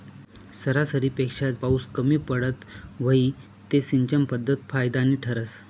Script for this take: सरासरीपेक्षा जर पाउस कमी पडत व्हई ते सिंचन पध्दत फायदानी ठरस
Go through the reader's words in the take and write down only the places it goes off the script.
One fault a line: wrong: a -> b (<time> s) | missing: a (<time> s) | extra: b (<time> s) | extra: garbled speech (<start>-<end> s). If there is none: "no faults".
missing: जर (1.5 s)